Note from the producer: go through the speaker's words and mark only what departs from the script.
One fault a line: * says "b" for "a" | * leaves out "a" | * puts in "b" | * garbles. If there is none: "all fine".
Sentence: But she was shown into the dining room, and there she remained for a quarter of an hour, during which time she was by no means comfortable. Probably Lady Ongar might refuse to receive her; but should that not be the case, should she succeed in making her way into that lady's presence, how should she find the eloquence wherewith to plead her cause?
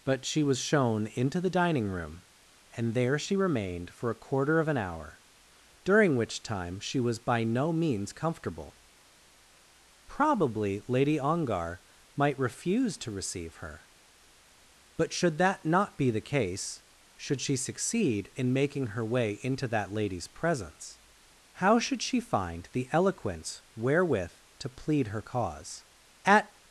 * puts in "At"